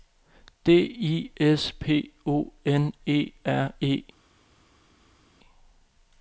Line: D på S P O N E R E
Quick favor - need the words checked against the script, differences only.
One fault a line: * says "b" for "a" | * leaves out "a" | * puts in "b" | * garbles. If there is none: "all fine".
* says "I" for "på"